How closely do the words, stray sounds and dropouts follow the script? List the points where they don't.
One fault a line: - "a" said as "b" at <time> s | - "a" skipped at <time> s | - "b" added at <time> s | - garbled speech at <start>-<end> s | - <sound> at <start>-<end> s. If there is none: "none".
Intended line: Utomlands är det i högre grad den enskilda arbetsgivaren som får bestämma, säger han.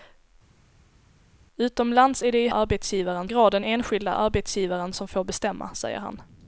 - "högre" said as "arbetsgivaren" at 2.5 s